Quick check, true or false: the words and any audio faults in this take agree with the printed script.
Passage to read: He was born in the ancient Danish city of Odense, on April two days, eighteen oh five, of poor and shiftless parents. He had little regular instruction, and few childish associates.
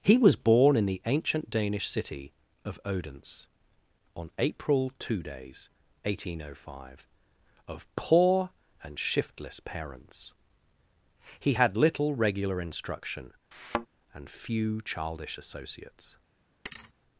false